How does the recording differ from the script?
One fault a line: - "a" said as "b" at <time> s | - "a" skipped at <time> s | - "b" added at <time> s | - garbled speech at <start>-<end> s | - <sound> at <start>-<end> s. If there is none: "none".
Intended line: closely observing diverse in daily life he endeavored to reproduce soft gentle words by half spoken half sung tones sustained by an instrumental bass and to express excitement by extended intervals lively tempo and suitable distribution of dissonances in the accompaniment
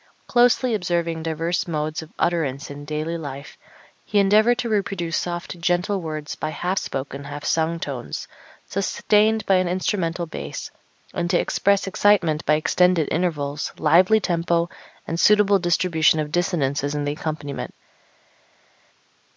- "modes of utterance" added at 1.7 s